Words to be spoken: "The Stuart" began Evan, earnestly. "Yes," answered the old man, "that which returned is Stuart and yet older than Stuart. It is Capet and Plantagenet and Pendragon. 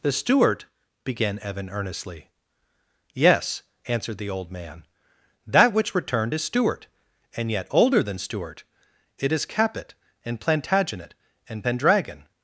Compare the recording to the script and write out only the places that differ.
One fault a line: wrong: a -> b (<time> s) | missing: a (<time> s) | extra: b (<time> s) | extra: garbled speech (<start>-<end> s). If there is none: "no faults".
no faults